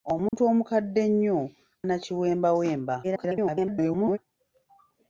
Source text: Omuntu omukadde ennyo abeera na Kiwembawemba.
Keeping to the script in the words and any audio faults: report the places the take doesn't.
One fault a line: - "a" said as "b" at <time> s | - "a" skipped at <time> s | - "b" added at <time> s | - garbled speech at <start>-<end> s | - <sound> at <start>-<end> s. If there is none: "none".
- dropout at 0.3-0.3 s
- "abeera" skipped at 1.4 s
- garbled speech at 3.0-4.2 s